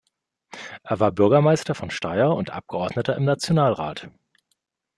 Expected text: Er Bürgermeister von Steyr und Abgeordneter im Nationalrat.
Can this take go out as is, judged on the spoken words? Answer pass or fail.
fail